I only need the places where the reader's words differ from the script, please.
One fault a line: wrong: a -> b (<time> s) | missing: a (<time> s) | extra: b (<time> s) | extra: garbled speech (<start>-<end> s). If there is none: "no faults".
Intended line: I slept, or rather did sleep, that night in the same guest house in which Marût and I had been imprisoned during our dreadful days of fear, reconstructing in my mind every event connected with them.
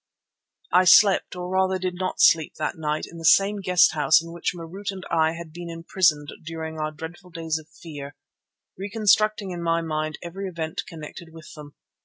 extra: not (1.9 s)